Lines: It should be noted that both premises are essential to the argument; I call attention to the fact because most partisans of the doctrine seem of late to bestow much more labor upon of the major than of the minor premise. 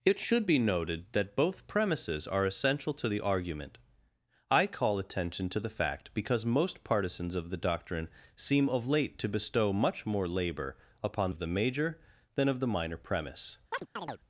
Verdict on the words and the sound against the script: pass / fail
fail